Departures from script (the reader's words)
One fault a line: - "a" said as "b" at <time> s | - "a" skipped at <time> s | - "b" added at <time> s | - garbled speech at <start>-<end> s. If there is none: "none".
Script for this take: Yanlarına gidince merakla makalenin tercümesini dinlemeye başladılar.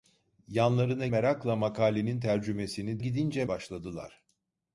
- "gidince" skipped at 1.1 s
- "dinlemeye" said as "gidince" at 3.0 s